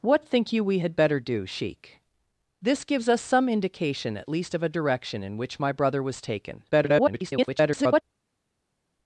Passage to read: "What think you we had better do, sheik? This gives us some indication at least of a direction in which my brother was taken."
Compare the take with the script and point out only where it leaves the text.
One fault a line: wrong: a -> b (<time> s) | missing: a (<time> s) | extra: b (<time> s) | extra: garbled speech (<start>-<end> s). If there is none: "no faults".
extra: garbled speech (6.7-8.0 s)